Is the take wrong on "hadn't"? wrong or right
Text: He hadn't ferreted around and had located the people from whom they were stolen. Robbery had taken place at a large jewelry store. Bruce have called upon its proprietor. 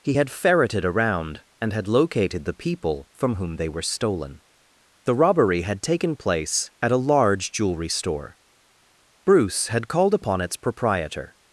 wrong